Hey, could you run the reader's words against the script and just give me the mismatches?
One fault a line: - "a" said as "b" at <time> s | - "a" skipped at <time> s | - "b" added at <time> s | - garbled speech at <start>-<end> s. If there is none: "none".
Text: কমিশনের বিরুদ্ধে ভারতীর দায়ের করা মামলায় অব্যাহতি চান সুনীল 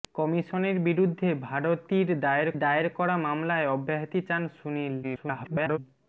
- "দায়ের" added at 2.6 s
- garbled speech at 5.0-5.8 s